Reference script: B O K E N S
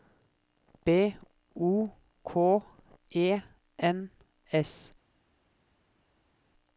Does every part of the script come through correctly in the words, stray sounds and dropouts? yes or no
yes